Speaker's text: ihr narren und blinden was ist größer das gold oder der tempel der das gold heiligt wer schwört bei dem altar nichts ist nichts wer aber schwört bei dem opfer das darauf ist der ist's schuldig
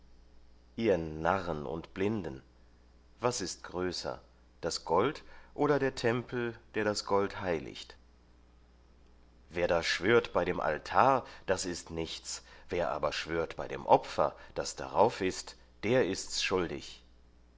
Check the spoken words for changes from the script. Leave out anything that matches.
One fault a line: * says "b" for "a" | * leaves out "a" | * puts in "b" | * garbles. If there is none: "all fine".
* puts in "da"
* says "das" for "nichts"